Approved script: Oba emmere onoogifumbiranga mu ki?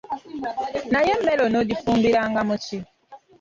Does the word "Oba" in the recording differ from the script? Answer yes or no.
yes